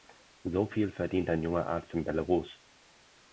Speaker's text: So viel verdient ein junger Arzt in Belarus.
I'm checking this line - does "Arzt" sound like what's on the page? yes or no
yes